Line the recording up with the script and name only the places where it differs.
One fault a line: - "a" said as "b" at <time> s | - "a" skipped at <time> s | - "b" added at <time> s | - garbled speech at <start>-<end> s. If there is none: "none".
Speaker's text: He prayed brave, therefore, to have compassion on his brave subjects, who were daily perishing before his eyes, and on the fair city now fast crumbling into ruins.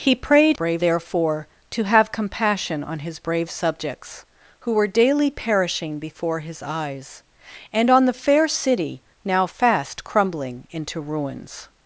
none